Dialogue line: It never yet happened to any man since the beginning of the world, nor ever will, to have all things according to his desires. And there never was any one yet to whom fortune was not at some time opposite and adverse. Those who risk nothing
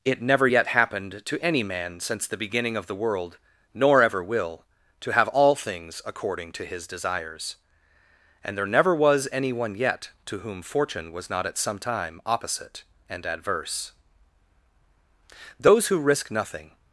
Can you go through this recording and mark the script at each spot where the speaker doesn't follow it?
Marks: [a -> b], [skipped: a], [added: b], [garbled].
It never yet happened to any man since the beginning of the world, nor ever will, to have all things according to his desires. And there never was any one yet to whom fortune was not at some time opposite and adverse. Those who risk nothing